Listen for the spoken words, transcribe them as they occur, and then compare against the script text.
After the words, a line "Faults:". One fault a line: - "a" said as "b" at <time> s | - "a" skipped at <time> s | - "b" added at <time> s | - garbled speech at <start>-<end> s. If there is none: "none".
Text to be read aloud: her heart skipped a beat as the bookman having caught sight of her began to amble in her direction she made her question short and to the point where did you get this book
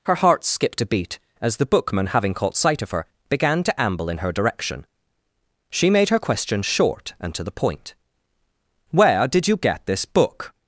her heart skipped a beat as the bookman having caught sight of her began to amble in her direction she made her question short and to the point where did you get this book
Faults:
none